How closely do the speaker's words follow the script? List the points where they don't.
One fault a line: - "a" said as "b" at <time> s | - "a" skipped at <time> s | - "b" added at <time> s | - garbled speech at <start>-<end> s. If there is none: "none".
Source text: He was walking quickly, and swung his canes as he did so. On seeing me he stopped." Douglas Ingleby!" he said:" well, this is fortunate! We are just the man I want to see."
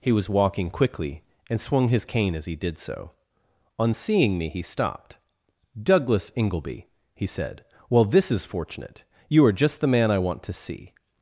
- "canes" said as "cane" at 2.0 s
- "We" said as "You" at 9.3 s